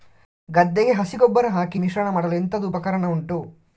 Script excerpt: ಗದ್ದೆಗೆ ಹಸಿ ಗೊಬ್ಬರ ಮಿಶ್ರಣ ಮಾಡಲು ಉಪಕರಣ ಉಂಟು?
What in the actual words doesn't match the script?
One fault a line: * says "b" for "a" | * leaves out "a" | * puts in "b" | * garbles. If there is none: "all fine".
* puts in "ಹಾಕಿ"
* puts in "ಎಂತದು"